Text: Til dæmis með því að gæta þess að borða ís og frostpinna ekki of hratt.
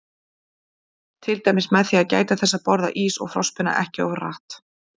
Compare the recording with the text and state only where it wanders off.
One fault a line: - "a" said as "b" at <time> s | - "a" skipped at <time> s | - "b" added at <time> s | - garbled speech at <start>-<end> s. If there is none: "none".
none